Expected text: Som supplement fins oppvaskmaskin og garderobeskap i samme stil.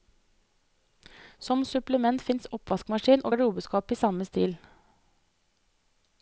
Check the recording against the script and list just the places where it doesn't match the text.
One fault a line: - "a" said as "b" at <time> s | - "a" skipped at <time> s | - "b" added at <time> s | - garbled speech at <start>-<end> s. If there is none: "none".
none